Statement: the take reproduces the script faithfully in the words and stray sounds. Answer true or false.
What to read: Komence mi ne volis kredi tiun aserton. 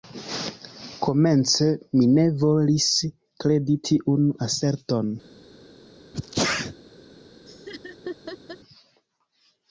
false